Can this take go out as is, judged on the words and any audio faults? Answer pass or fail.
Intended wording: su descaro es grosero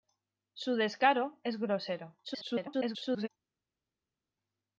fail